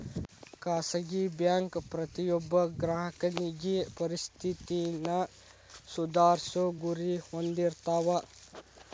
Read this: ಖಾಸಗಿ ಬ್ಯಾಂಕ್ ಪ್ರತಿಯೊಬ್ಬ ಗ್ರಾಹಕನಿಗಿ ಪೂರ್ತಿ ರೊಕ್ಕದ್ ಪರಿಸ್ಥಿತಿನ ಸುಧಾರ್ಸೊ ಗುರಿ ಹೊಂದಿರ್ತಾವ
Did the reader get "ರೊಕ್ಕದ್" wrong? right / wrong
wrong